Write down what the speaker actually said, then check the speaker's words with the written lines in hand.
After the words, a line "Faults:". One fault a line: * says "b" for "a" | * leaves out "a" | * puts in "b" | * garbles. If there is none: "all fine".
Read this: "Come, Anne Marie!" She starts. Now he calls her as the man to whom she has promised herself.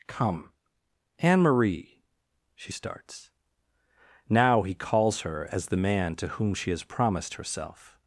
"Come, Anne Marie!" She starts. Now he calls her as the man to whom she has promised herself.
Faults:
all fine